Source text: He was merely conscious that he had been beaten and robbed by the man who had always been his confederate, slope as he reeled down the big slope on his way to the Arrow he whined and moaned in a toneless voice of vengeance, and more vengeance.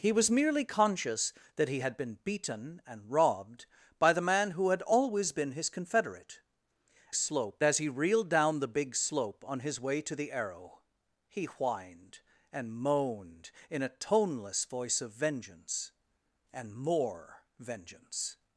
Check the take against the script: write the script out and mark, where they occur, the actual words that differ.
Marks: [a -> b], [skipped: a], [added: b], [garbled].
He was merely conscious that he had been beaten and robbed by the man who had always been his confederate, slope as he reeled down the big slope on his way to the Arrow he whined and moaned in a toneless voice of vengeance, and more vengeance.